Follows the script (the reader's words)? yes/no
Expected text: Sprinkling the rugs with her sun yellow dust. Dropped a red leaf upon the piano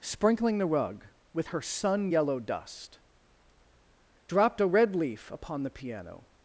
no